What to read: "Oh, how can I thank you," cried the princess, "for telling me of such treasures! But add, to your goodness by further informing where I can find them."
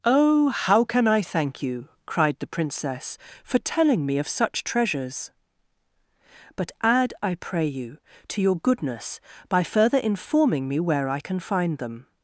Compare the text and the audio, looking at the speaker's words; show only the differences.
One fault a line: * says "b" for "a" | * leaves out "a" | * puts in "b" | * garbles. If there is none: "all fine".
* puts in "I pray you"
* puts in "me"